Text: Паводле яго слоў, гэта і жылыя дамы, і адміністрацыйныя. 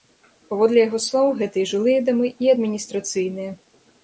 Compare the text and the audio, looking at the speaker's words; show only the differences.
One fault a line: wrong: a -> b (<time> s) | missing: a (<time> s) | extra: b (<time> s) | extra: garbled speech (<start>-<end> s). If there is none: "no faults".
no faults